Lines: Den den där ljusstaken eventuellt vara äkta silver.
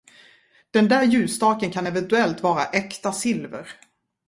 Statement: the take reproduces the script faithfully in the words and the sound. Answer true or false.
false